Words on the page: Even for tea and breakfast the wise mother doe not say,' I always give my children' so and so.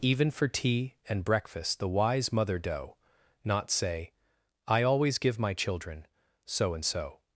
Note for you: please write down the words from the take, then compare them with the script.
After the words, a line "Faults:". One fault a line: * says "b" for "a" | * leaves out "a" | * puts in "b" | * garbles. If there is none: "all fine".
Even for tea and breakfast the wise mother doe not say,' I always give my children' so and so.
Faults:
all fine